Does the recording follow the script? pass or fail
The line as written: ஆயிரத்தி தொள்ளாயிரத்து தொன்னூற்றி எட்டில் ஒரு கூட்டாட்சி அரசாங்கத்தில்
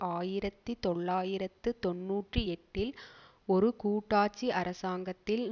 pass